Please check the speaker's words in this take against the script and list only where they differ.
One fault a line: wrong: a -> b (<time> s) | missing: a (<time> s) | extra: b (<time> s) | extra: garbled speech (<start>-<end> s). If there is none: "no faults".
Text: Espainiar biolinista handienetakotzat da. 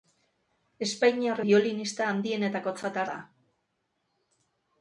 no faults